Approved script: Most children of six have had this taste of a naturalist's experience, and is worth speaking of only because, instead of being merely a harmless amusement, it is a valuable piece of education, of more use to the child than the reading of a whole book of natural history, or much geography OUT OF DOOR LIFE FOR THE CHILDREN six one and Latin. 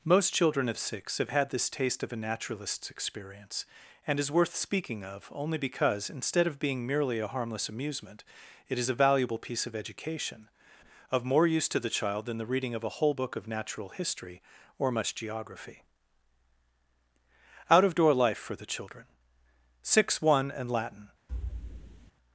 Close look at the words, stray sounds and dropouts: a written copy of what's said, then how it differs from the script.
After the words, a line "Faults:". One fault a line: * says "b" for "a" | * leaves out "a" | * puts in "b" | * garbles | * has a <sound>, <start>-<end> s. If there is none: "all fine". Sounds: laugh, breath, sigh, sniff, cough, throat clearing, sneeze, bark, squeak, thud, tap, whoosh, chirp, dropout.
Most children of six have had this taste of a naturalist's experience, and is worth speaking of only because, instead of being merely a harmless amusement, it is a valuable piece of education, of more use to the child than the reading of a whole book of natural history, or much geography OUT OF DOOR LIFE FOR THE CHILDREN six one and Latin.
Faults:
* has a thud, 21.3-22.1 s